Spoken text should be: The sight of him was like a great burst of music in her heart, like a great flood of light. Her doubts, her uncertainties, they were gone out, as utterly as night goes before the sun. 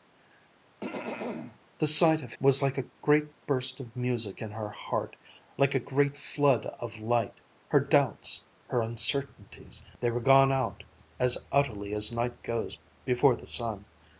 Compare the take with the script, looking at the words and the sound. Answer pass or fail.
fail